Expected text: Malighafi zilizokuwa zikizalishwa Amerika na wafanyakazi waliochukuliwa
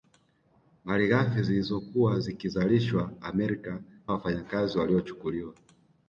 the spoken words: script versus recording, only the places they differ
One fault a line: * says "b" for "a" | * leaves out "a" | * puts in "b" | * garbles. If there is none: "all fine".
* leaves out "na"